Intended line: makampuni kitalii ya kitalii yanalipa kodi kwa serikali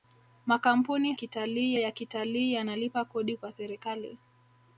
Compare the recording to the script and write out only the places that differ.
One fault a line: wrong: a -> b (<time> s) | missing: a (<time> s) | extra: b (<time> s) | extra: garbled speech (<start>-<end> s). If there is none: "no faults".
no faults